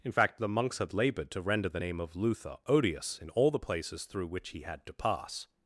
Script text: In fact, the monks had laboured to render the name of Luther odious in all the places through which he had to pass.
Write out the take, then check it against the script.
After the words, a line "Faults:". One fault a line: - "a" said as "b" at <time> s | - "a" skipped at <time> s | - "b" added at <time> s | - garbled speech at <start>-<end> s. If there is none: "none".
In fact, the monks had laboured to render the name of Luther odious in all the places through which he had to pass.
Faults:
none